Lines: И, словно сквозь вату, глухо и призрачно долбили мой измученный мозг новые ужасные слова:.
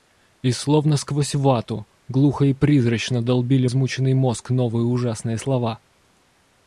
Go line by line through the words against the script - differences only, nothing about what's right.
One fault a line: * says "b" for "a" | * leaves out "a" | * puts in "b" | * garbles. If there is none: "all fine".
* leaves out "мой"